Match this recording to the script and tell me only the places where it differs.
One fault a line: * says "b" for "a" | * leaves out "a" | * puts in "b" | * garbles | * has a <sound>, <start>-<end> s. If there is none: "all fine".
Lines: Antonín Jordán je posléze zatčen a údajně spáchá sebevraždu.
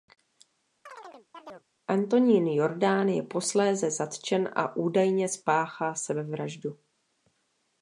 * has a chirp, 0.9-1.7 s